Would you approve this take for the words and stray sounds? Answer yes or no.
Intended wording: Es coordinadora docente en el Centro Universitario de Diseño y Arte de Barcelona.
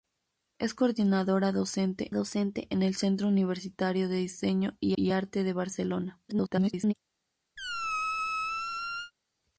no